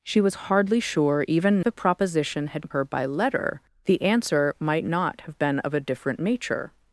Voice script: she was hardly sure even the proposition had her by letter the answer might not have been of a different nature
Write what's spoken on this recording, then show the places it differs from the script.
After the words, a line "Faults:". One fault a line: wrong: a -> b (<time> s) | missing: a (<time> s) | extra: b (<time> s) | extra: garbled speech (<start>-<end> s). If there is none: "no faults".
she was hardly sure even the proposition had her by letter the answer might not have been of a different nature
Faults:
no faults